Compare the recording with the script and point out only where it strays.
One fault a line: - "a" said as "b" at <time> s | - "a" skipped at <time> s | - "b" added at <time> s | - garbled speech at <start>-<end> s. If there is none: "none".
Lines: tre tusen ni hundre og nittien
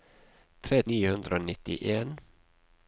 - "tusen" skipped at 0.8 s